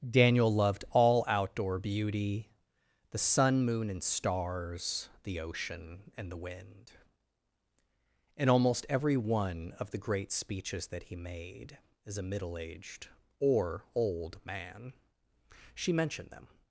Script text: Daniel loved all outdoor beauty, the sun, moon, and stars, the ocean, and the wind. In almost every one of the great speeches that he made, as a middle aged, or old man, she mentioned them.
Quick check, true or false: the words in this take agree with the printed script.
true